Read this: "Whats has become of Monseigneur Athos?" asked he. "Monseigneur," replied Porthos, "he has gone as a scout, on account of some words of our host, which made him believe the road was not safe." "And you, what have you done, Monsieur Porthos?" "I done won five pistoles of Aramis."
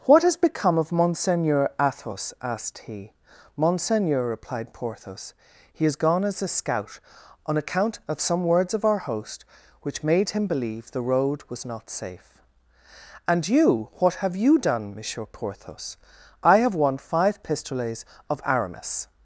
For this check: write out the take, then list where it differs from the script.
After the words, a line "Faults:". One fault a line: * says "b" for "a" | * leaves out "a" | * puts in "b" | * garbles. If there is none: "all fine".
"What has become of Monseigneur Athos?" asked he. "Monseigneur," replied Porthos, "he has gone as a scout, on account of some words of our host, which made him believe the road was not safe." "And you, what have you done, Monsieur Porthos?" "I have won five pistoles of Aramis."
Faults:
* says "What" for "Whats"
* says "have" for "done"